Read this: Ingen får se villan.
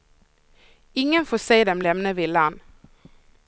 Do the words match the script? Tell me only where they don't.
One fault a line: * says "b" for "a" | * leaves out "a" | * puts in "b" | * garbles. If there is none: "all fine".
* puts in "dem lämna"